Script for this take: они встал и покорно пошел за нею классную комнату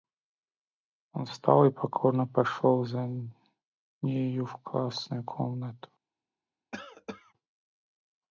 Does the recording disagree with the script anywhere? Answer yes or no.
yes